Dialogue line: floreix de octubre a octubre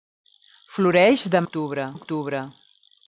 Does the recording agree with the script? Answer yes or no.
yes